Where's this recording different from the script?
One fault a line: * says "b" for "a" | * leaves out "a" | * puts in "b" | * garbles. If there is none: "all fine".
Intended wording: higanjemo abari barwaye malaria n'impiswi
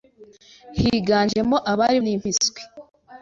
* leaves out "barwaye malaria"